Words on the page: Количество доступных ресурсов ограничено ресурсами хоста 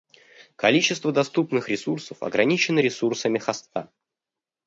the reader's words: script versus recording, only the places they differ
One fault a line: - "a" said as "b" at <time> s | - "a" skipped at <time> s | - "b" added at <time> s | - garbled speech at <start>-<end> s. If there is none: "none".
none